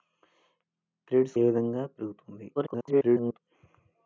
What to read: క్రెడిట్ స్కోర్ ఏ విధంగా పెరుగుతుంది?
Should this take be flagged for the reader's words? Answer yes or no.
yes